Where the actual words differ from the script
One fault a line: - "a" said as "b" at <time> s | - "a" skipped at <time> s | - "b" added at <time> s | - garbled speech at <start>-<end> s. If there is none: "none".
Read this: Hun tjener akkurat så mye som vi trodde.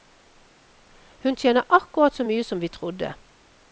none